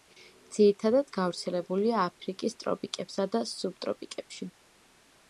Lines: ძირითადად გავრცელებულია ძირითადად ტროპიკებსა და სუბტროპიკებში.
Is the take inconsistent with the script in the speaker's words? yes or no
yes